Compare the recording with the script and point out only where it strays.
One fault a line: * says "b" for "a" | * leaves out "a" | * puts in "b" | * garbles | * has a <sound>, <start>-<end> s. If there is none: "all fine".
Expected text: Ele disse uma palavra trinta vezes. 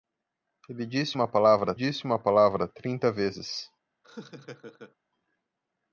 * puts in "disse uma palavra"
* has a laugh, 4.0-5.0 s